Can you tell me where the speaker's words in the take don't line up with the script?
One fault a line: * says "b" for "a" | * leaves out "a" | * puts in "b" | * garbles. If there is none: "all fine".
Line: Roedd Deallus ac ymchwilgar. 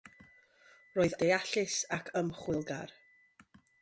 all fine